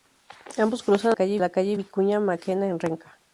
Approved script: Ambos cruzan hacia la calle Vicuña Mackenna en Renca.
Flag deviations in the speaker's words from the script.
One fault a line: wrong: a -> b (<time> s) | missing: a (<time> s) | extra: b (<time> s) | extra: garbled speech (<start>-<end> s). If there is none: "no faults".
wrong: hacia -> calle (1.1 s)